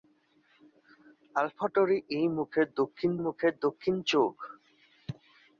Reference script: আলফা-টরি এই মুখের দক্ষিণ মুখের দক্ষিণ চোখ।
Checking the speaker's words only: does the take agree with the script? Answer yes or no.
yes